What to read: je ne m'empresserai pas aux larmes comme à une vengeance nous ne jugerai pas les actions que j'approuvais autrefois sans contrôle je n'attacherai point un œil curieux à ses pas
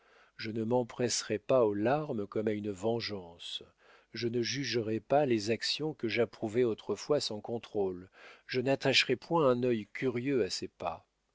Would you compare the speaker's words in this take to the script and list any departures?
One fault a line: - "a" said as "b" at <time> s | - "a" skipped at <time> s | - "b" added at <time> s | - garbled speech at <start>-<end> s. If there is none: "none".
- "nous" said as "je" at 4.1 s